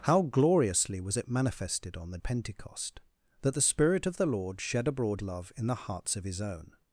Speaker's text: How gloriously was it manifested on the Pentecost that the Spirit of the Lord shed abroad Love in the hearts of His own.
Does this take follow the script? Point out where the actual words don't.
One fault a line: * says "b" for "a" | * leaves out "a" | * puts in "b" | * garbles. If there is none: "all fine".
all fine